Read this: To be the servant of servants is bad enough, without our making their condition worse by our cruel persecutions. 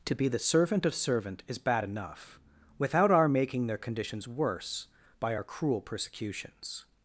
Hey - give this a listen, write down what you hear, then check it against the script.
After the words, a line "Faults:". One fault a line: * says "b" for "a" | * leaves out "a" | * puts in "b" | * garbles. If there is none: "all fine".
To be the servant of servant is bad enough, without our making their conditions worse by our cruel persecutions.
Faults:
* says "servant" for "servants"
* says "conditions" for "condition"